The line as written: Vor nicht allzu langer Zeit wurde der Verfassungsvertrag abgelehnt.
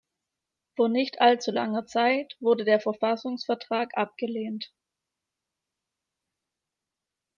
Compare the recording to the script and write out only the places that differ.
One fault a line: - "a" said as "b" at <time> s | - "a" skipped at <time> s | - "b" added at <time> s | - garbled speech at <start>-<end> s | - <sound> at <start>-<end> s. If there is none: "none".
none